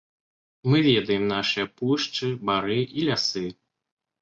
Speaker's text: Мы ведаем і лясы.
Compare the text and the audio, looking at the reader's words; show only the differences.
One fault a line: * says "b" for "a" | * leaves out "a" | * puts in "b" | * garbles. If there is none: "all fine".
* puts in "нашыя пушчы бары"